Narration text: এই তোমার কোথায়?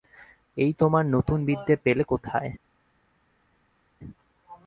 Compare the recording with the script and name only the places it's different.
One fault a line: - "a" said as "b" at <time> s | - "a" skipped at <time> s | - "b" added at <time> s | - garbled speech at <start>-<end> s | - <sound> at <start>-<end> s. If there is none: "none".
- "নতুন বিদ্যে পেলে" added at 1.1 s